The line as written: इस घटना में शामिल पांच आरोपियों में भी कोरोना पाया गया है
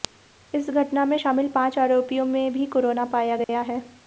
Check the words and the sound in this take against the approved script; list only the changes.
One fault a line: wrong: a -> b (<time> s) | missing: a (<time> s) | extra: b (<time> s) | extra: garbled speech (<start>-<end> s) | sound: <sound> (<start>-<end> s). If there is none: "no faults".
sound: dropout (3.4-3.5 s)